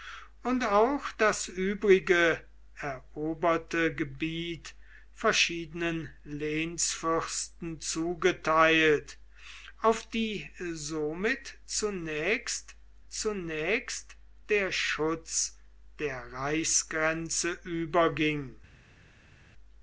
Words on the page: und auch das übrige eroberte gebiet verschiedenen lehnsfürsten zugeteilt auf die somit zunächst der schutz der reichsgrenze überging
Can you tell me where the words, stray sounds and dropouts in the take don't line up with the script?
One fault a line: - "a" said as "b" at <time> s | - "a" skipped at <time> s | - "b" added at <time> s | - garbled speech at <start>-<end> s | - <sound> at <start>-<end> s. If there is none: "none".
- "zunächst" added at 13.1 s